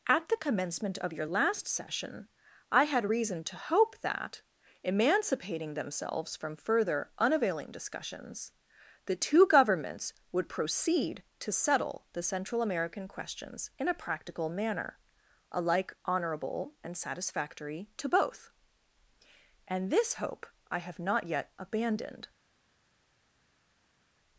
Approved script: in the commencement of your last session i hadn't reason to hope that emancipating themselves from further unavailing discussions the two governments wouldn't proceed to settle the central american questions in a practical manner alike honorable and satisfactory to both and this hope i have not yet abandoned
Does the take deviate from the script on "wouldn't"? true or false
true